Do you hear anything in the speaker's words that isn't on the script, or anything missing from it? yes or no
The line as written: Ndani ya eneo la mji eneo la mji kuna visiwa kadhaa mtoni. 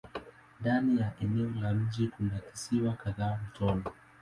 yes